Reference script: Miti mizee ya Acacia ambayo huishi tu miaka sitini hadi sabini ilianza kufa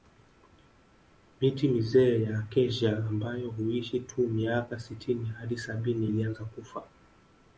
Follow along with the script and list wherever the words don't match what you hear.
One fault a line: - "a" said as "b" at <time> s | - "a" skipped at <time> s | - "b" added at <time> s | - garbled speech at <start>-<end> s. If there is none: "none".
none